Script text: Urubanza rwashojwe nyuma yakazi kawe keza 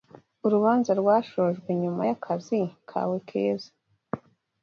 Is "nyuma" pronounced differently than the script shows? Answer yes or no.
no